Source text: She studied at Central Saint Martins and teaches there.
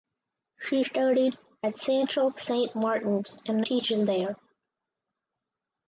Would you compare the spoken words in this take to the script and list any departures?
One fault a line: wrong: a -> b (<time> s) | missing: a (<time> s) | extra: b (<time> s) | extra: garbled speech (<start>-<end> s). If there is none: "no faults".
no faults